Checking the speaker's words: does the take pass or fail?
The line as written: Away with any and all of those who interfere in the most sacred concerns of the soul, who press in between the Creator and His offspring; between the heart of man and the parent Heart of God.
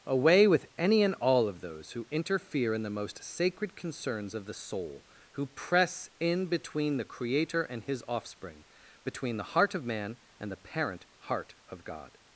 pass